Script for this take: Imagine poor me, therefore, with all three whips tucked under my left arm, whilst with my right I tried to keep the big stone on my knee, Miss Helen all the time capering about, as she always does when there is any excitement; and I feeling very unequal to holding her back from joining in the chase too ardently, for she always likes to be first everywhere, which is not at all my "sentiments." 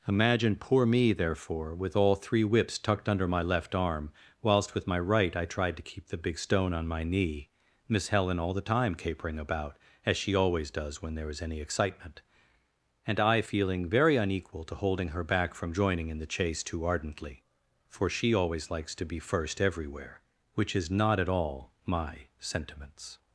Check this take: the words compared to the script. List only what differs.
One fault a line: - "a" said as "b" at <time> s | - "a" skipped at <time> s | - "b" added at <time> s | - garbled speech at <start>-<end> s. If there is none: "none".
none